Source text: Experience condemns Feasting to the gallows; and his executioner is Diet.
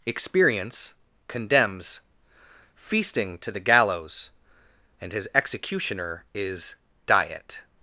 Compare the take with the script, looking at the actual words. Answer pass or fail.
pass